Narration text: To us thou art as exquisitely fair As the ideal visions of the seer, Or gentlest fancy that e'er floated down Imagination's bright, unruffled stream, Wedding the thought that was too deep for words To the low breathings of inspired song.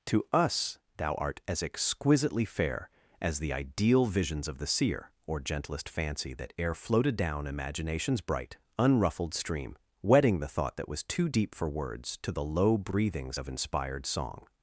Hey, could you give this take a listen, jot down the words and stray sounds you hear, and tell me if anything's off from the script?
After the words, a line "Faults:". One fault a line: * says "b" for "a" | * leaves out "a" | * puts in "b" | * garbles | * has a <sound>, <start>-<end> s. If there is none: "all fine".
To us thou art as exquisitely fair As the ideal visions of the seer, Or gentlest fancy that e'er floated down Imagination's bright, unruffled stream, Wedding the thought that was too deep for words To the low breathings of inspired song.
Faults:
all fine